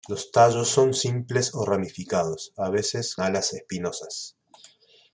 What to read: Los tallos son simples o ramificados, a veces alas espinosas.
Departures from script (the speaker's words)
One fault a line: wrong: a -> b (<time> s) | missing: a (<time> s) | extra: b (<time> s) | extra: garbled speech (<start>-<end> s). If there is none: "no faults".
no faults